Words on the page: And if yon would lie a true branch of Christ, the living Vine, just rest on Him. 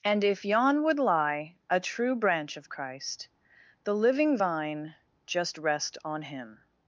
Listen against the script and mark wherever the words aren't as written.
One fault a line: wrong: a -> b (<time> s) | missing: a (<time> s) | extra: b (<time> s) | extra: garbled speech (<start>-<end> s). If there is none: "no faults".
no faults